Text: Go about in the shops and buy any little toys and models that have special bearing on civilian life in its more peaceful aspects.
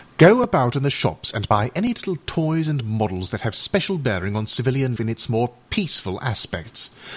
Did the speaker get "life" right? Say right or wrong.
wrong